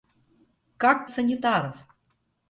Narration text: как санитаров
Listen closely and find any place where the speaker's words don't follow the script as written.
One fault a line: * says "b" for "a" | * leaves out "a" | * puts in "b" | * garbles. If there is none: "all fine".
all fine